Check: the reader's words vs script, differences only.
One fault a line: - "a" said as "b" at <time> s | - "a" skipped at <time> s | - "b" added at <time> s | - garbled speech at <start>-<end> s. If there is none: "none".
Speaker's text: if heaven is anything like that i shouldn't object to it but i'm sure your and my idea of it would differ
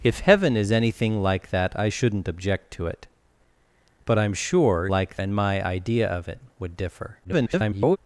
- "your" said as "like" at 4.9 s
- garbled speech at 7.2-8.0 s